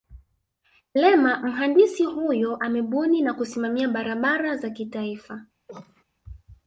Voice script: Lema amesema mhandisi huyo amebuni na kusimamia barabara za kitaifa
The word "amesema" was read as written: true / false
false